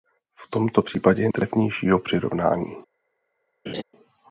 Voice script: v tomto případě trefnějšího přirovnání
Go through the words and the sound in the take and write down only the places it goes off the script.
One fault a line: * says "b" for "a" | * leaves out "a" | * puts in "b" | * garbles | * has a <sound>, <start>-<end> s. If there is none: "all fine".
* has a laugh, 3.7-3.8 s